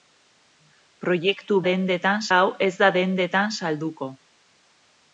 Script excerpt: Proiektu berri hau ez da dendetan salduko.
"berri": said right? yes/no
no